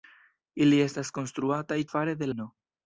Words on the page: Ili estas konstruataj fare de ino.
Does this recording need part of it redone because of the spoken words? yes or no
no